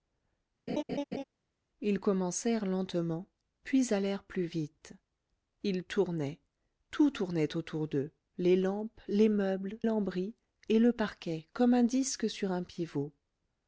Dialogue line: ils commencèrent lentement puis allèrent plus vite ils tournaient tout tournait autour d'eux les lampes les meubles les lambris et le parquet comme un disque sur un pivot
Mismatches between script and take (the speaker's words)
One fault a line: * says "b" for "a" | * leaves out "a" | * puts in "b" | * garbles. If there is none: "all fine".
* leaves out "les"